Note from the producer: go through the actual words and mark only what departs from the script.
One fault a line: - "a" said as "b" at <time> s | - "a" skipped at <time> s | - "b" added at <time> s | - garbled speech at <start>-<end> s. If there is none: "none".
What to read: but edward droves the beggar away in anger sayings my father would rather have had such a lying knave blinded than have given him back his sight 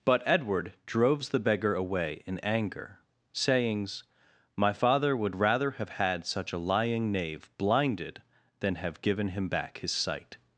none